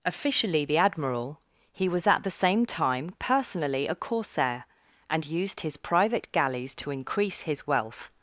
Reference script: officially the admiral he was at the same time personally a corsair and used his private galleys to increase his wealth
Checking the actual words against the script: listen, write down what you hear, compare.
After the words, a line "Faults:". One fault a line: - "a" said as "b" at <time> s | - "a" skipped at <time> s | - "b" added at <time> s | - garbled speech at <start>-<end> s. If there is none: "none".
officially the admiral he was at the same time personally a corsair and used his private galleys to increase his wealth
Faults:
none